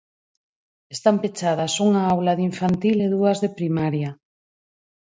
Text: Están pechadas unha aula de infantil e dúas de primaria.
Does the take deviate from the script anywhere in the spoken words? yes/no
no